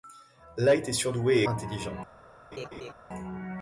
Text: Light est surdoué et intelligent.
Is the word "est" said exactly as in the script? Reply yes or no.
yes